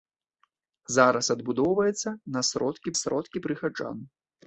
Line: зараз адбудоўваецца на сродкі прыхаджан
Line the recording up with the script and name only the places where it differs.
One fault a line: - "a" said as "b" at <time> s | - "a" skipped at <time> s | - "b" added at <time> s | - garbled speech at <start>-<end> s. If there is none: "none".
- "сродкі" added at 3.0 s